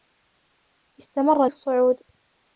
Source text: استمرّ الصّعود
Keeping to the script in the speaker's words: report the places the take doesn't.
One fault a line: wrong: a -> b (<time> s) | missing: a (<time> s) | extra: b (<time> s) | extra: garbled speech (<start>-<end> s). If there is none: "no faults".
no faults